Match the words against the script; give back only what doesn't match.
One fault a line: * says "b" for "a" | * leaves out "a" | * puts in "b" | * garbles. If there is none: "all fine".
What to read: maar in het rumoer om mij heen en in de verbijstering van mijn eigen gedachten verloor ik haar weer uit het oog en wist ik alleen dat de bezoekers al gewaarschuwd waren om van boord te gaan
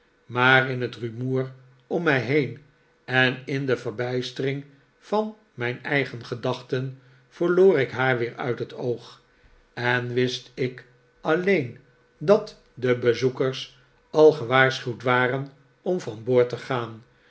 all fine